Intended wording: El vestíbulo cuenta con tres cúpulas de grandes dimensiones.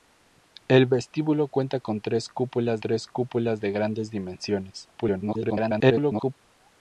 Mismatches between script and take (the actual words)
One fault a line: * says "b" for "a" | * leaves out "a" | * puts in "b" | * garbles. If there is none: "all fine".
* puts in "tres cúpulas"
* garbles